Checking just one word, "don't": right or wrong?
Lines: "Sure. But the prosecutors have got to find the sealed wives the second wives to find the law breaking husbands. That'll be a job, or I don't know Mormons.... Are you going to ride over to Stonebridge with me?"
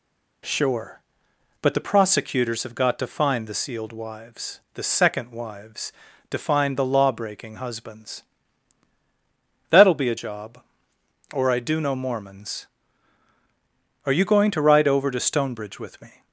wrong